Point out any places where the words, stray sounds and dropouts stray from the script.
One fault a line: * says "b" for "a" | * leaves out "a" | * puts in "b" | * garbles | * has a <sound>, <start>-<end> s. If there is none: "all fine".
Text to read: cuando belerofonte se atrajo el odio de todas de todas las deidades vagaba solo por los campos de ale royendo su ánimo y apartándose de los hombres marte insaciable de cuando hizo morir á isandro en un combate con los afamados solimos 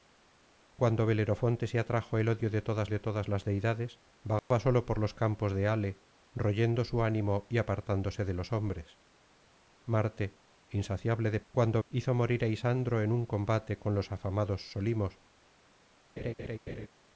* has a dropout, 4.4-4.5 s
* has a laugh, 16.2-16.9 s